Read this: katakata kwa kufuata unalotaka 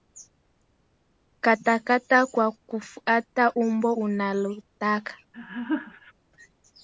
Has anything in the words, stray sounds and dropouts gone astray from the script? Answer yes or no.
yes